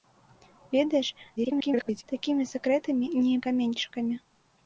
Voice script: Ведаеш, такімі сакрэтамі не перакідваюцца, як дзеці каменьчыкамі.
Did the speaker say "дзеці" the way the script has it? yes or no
no